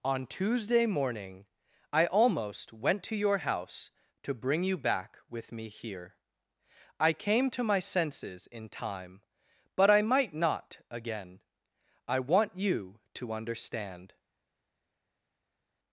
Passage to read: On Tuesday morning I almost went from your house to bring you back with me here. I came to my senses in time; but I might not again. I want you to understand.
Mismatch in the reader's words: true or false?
true